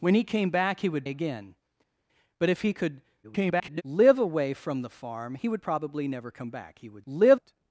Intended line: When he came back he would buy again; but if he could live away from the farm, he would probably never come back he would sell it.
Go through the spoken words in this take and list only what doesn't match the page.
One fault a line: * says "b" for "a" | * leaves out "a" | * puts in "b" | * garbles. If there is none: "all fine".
* leaves out "buy"
* garbles
* says "live" for "sell"